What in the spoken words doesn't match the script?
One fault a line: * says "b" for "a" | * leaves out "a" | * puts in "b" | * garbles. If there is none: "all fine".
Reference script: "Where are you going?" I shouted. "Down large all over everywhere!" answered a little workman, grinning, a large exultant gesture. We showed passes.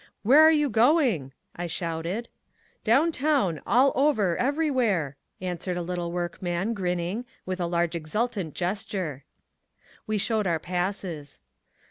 * says "town" for "large"
* puts in "with"
* puts in "our"